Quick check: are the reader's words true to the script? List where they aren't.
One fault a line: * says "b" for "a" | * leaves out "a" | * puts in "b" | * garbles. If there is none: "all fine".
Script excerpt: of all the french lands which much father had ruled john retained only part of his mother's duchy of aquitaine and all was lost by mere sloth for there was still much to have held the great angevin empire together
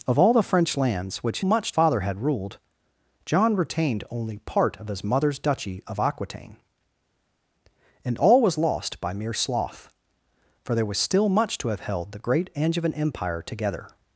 all fine